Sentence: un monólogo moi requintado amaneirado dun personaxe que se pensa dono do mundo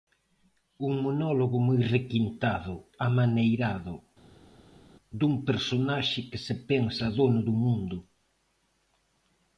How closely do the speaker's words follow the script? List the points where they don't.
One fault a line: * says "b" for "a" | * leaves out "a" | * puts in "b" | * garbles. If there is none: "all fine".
all fine